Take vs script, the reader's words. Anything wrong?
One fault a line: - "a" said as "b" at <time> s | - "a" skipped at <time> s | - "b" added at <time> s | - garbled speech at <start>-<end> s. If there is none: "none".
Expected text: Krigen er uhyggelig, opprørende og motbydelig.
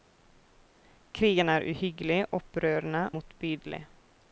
- "og" skipped at 3.1 s